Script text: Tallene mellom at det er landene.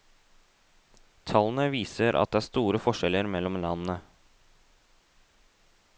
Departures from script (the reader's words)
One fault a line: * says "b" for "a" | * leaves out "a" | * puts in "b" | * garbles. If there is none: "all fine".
* says "viser" for "mellom"
* puts in "store forskjeller mellom"